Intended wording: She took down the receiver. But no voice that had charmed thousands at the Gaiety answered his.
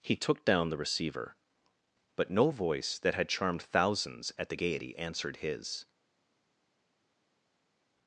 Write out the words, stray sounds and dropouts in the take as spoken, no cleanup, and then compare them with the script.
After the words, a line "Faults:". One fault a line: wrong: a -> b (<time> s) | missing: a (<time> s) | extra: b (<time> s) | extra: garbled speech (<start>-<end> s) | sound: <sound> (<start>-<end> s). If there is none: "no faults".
He took down the receiver. But no voice that had charmed thousands at the Gaiety answered his.
Faults:
wrong: She -> He (0.0 s)